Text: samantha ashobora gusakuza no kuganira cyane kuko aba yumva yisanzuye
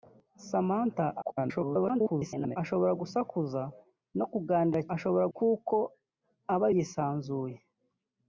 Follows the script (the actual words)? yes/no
no